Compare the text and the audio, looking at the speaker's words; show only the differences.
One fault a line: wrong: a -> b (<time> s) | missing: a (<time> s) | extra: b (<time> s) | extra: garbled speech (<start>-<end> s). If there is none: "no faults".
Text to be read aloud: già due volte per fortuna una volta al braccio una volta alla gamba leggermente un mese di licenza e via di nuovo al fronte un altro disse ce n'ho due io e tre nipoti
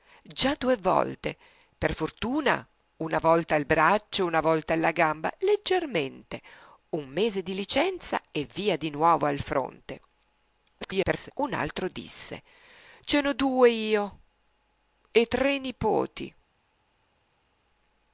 extra: garbled speech (10.8-11.3 s)